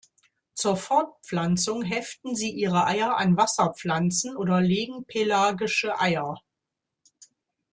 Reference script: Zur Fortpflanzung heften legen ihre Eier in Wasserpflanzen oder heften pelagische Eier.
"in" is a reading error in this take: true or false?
true